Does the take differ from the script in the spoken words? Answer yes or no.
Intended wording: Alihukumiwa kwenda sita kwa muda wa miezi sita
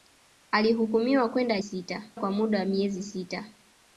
no